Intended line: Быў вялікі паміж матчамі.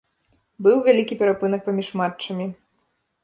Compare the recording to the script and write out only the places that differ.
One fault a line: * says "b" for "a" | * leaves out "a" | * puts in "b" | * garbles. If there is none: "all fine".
* puts in "перапынак"